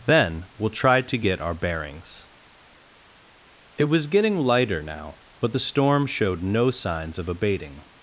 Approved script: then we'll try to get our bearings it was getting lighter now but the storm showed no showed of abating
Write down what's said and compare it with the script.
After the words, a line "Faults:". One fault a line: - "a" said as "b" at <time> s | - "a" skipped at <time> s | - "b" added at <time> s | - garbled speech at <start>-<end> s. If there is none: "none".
then we'll try to get our bearings it was getting lighter now but the storm showed no signs of abating
Faults:
- "showed" said as "signs" at 6.7 s